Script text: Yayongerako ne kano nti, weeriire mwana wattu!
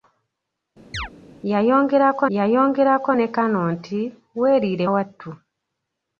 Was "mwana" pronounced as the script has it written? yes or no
no